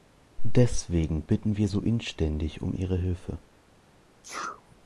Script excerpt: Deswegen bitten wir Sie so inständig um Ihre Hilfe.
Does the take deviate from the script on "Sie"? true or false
true